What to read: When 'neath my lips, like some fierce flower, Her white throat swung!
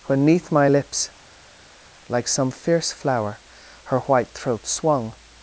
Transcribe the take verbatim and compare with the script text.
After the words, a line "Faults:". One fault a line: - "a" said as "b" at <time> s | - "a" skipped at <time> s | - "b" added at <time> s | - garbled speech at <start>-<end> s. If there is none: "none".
When 'neath my lips, like some fierce flower, Her white throat swung!
Faults:
none